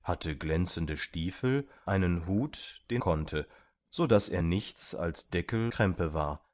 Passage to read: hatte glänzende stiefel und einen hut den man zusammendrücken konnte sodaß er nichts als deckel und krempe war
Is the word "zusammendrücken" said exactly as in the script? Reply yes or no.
no